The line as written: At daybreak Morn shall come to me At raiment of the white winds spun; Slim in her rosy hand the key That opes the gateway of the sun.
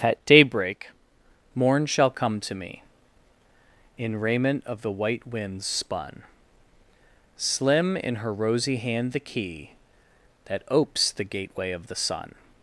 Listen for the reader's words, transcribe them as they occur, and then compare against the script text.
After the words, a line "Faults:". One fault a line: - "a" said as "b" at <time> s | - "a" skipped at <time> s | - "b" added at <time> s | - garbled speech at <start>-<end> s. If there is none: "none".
At daybreak Morn shall come to me In raiment of the white winds spun; Slim in her rosy hand the key That opes the gateway of the sun.
Faults:
- "At" said as "In" at 4.0 s